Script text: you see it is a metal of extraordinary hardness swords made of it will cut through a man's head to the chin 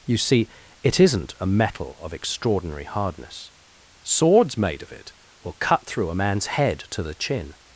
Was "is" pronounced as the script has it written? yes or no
no